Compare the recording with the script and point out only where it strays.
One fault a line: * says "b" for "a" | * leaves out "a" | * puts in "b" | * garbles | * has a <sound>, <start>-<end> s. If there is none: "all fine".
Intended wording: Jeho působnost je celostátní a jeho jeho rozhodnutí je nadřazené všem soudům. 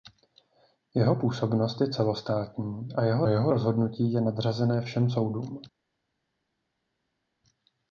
all fine